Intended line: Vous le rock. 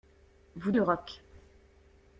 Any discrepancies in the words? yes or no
no